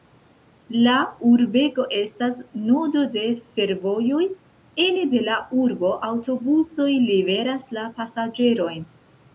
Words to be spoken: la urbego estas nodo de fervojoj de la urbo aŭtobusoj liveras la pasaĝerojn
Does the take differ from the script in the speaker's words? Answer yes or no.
yes